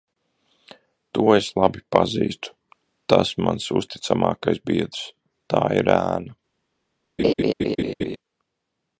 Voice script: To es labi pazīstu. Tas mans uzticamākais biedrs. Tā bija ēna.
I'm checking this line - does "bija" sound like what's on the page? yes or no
no